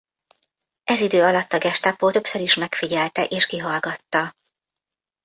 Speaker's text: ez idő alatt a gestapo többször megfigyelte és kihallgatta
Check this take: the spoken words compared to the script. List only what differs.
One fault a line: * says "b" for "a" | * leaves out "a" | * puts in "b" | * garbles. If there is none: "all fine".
* puts in "is"